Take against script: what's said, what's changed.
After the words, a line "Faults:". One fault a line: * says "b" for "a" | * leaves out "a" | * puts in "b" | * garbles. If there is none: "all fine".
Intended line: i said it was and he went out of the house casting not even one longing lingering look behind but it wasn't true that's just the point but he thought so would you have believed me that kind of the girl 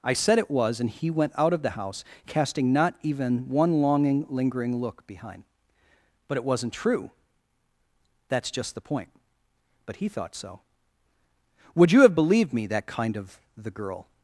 i said it was and he went out of the house casting not even one longing lingering look behind but it wasn't true that's just the point but he thought so would you have believed me that kind of the girl
Faults:
all fine